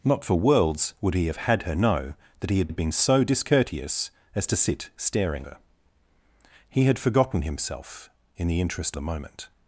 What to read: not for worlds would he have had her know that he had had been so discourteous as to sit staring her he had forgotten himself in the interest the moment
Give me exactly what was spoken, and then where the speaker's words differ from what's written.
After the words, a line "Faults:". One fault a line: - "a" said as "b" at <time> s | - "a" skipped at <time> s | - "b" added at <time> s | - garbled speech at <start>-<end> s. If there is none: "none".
not for worlds would he have had her know that he had had been so discourteous as to sit staring her he had forgotten himself in the interest the moment
Faults:
none